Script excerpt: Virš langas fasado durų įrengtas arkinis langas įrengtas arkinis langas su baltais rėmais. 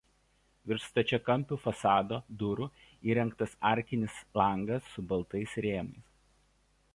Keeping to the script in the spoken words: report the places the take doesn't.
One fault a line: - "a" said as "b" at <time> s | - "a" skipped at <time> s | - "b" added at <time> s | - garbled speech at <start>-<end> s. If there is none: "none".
- "langas" said as "stačiakampių" at 0.9 s
- "įrengtas arkinis langas" skipped at 4.9 s